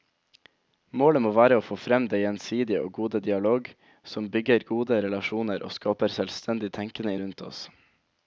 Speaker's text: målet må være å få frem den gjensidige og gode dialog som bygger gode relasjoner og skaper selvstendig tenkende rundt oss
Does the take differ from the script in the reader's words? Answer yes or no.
no